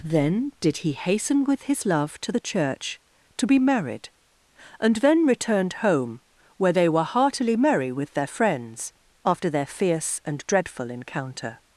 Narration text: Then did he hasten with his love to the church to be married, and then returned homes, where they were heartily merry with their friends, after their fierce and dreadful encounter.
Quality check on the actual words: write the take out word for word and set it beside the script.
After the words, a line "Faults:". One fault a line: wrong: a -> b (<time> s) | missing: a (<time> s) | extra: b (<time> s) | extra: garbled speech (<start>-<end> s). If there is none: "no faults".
Then did he hasten with his love to the church to be married, and then returned home, where they were heartily merry with their friends, after their fierce and dreadful encounter.
Faults:
wrong: homes -> home (5.7 s)